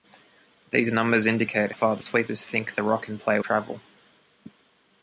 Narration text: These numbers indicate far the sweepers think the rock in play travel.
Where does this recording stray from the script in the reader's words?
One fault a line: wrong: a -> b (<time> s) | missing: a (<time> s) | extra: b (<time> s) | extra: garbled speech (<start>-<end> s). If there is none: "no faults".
no faults